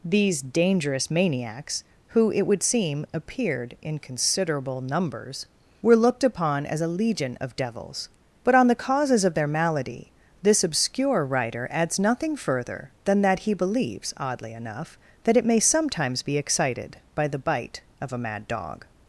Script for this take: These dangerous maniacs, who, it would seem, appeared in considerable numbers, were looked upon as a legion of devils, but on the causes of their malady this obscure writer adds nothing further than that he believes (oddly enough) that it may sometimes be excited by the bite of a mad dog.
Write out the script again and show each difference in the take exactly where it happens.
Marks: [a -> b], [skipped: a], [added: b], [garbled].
These dangerous maniacs, who, it would seem, appeared in considerable numbers, were looked upon as a legion of devils, but on the causes of their malady this obscure writer adds nothing further than that he believes (oddly enough) that it may sometimes be excited by the bite of a mad dog.